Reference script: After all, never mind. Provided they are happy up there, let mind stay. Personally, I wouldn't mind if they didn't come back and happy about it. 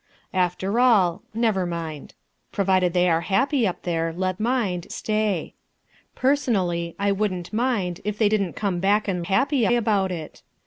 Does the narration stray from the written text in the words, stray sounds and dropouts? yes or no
no